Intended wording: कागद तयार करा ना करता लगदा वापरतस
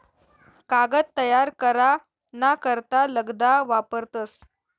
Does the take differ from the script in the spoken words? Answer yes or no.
no